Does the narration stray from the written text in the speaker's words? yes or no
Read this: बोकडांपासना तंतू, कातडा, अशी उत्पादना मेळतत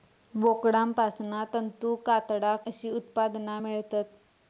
no